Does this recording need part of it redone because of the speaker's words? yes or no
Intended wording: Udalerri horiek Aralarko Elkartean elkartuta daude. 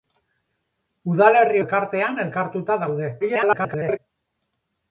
yes